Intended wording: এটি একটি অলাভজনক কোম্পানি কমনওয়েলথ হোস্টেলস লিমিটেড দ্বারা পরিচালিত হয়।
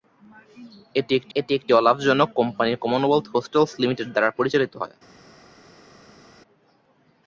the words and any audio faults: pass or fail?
fail